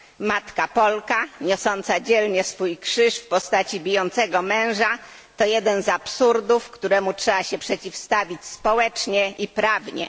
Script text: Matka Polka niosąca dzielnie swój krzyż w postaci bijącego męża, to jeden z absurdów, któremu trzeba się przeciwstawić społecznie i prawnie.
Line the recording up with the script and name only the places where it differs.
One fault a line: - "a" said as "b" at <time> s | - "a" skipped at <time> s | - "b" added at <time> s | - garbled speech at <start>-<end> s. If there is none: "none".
none